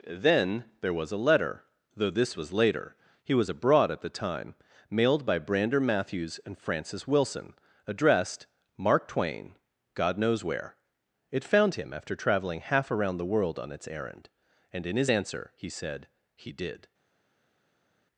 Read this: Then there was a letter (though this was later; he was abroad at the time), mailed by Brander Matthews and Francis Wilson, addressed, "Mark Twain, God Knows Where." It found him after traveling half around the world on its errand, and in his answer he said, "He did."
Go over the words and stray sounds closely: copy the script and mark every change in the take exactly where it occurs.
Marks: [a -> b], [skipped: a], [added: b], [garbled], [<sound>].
Then there was a letter (though this was later; he was abroad at the time), mailed by Brander Matthews and Francis Wilson, addressed, "Mark Twain, God Knows Where." It found him after traveling half around the world on its errand, and in his answer he said, "He did."